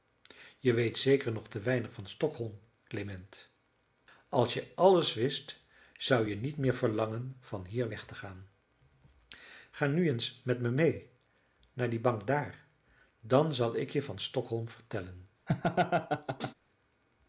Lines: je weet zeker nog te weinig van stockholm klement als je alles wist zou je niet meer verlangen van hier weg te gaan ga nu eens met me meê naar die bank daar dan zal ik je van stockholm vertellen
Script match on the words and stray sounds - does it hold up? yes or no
no